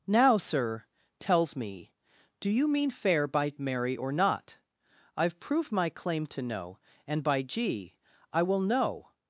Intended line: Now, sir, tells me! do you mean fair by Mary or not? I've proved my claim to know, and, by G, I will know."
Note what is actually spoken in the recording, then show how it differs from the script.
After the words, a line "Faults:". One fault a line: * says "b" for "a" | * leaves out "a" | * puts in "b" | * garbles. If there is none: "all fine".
Now, sir, tells me! do you mean fair by Mary or not? I've proved my claim to know, and, by G, I will know."
Faults:
all fine